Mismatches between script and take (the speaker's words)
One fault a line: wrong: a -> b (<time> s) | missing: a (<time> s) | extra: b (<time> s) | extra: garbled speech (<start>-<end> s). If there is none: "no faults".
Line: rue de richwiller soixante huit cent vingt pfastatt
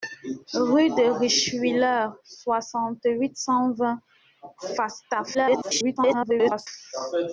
extra: garbled speech (5.3-6.7 s)